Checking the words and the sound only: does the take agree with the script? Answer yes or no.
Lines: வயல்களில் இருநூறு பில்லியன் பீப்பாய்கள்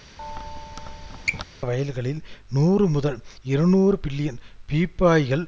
no